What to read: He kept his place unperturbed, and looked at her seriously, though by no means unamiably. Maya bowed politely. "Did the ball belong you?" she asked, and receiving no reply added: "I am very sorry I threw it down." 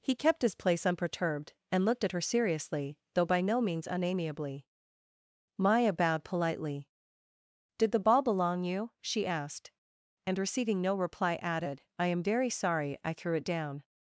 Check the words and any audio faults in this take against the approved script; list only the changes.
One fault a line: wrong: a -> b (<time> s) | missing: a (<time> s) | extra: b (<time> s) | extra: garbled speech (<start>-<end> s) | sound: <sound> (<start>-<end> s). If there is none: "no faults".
no faults